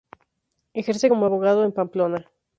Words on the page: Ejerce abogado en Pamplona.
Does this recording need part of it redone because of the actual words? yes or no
yes